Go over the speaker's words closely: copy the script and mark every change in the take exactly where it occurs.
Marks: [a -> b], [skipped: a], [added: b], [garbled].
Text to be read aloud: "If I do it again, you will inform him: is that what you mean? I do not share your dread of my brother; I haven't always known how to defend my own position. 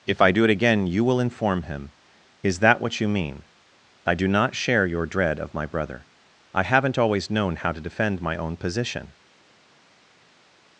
"If I do it again, you will inform him: is that what you mean? I do not share your dread of my brother; I haven't always known how to defend my own position.